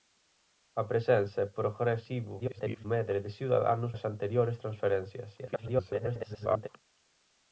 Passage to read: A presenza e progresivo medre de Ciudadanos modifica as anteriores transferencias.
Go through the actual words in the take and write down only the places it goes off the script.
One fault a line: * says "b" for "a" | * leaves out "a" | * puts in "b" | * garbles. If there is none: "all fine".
* garbles
* leaves out "modifica"
* garbles